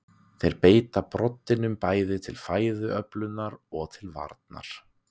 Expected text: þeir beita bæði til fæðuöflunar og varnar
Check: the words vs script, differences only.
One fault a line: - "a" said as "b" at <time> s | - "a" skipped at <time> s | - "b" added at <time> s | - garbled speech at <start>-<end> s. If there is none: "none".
- "broddinum" added at 1.1 s
- "til" added at 4.0 s